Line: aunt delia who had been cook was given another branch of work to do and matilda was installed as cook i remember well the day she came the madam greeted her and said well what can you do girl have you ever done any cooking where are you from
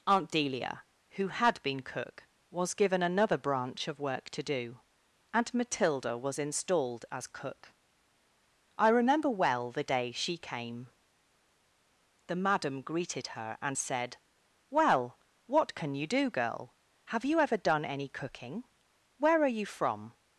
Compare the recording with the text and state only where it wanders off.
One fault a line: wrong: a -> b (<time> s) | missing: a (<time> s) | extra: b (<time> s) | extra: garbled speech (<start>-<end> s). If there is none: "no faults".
no faults